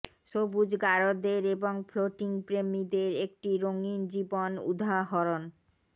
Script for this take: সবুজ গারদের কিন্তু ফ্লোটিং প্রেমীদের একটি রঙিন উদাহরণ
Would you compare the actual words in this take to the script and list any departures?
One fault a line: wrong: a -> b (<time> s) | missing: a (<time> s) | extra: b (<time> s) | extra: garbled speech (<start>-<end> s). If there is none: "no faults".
wrong: কিন্তু -> এবং (1.6 s)
extra: জীবন (4.1 s)